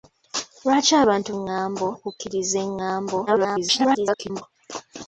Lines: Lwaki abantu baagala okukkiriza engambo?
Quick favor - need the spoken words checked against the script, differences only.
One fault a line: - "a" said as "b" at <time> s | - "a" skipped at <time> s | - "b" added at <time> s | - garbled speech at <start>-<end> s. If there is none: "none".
- "baagala" said as "engambo" at 1.4 s
- garbled speech at 3.3-4.4 s